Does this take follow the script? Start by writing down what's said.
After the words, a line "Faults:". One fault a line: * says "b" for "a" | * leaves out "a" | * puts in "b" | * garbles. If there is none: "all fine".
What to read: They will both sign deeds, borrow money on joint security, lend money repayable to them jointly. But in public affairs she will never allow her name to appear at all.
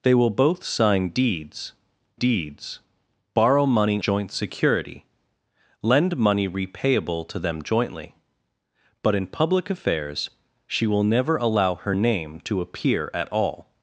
They will both sign deeds deeds, borrow money joint security, lend money repayable to them jointly. But in public affairs she will never allow her name to appear at all.
Faults:
* puts in "deeds"
* leaves out "on"